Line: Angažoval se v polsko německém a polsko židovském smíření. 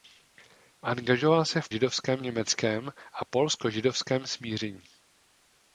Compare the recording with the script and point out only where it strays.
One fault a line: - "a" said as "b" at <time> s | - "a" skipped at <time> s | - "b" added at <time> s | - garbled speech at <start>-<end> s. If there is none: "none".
- "polsko" said as "židovském" at 1.7 s